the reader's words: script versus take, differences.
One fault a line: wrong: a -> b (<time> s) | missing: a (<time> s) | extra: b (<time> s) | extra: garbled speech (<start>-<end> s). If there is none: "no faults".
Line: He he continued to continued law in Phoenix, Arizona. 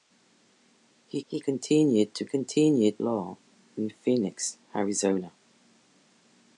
no faults